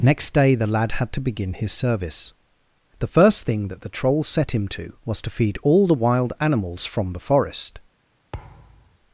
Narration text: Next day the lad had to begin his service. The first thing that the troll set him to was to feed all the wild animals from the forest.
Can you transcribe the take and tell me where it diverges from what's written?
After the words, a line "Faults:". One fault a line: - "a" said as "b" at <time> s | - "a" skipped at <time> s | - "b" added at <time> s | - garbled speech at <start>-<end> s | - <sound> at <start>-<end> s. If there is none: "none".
Next day the lad had to begin his service. The first thing that the troll set him to was to feed all the wild animals from the forest.
Faults:
- thud at 8.3-9.0 s